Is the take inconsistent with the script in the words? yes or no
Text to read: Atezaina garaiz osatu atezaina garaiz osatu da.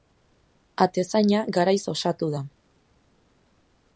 yes